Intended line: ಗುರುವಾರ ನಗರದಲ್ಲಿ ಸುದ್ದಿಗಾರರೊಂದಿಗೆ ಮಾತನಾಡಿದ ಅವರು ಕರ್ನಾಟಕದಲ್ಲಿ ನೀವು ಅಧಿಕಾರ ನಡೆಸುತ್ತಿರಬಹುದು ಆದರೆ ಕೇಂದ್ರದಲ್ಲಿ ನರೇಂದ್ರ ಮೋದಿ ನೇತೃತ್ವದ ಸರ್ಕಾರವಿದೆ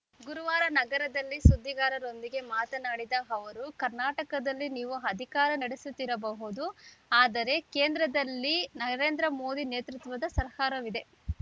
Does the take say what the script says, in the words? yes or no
yes